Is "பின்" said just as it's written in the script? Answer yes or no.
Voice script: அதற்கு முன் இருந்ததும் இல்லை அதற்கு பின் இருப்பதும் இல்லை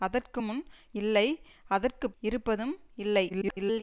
no